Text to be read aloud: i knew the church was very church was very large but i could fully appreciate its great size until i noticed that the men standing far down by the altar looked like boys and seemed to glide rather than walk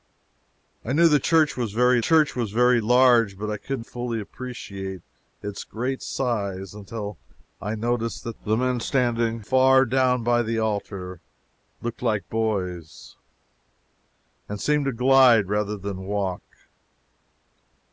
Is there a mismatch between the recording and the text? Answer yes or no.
no